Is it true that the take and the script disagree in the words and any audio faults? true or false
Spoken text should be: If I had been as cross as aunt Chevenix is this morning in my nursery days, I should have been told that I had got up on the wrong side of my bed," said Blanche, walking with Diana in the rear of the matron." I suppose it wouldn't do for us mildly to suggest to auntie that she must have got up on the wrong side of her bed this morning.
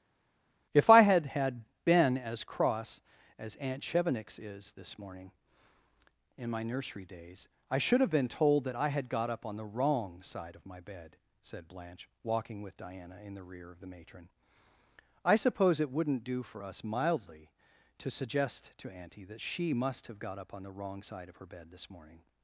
true